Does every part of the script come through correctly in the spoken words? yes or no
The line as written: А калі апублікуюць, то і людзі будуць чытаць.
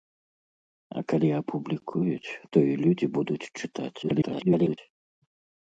no